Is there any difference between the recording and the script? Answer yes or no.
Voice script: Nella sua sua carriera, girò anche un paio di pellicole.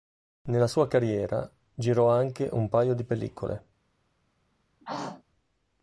yes